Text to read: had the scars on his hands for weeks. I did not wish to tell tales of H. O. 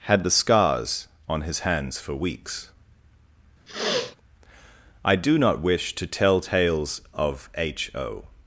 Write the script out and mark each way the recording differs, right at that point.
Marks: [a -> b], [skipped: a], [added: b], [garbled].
had the scars on his hands for weeks. I [did -> do] not wish to tell tales of H. O.